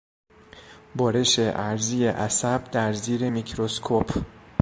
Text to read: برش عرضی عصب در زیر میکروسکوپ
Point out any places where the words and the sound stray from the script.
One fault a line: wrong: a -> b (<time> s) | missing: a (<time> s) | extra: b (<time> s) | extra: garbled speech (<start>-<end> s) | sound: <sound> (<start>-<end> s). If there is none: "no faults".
no faults